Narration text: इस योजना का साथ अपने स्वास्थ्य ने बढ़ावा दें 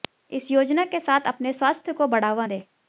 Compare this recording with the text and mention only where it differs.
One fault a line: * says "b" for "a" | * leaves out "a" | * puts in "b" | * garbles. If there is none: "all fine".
* says "के" for "का"
* says "को" for "ने"